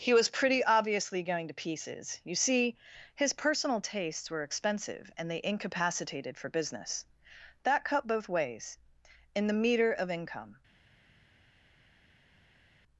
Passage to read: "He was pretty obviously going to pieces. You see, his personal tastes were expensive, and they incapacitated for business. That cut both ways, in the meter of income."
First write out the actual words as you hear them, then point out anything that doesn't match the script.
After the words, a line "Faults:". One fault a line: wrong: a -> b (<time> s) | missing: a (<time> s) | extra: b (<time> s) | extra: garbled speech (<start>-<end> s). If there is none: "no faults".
"He was pretty obviously going to pieces. You see, his personal tastes were expensive, and they incapacitated for business. That cut both ways, in the meter of income."
Faults:
no faults